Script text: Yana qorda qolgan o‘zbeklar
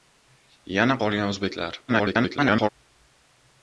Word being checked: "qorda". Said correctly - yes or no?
no